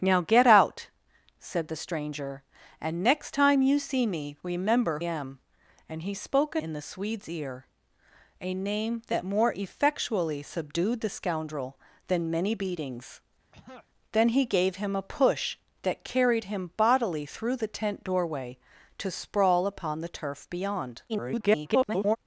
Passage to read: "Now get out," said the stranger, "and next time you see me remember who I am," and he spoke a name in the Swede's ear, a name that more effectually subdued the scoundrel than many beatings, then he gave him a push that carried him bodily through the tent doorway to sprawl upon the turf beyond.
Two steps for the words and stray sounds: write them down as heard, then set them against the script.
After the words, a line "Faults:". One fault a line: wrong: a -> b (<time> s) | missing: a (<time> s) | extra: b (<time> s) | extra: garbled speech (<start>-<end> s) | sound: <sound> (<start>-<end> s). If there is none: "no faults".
"Now get out," said the stranger, "and next time you see me remember am," and he spoke a in the Swede's ear, a name that more effectually subdued the scoundrel than many beatings, then he gave him a push that carried him bodily through the tent doorway to sprawl upon the turf beyond. [garbled]
Faults:
missing: who I (5.0 s)
missing: name (6.6 s)
sound: throat clearing (13.5-13.9 s)
extra: garbled speech (21.1-22.2 s)